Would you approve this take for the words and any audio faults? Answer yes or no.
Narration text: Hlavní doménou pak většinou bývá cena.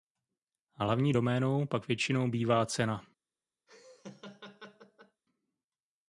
no